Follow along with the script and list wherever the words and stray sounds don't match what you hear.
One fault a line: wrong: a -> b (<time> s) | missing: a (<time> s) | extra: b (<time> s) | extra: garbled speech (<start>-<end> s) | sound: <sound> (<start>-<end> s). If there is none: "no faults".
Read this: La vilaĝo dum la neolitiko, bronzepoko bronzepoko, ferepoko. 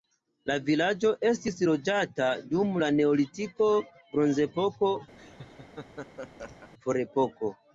extra: estis loĝata (1.3 s)
missing: bronzepoko (4.9 s)
sound: laugh (5.2-6.7 s)